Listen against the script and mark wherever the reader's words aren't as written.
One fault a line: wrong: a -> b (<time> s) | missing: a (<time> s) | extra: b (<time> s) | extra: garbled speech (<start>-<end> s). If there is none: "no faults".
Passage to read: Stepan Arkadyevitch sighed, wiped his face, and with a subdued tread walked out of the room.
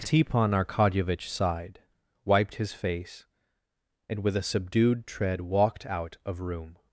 missing: the (6.4 s)